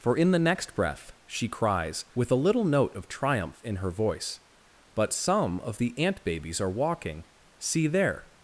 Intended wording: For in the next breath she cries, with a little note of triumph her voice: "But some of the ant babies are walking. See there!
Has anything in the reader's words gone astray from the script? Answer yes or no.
yes